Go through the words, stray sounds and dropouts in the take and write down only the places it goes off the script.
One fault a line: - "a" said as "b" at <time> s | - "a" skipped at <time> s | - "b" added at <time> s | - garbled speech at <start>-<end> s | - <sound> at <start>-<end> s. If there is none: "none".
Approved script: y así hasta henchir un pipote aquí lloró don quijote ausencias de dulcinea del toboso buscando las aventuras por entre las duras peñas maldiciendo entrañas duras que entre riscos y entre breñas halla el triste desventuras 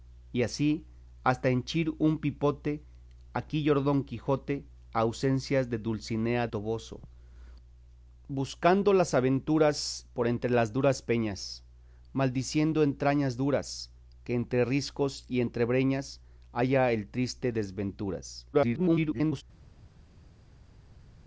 - "del" skipped at 6.5 s
- garbled speech at 18.5-19.4 s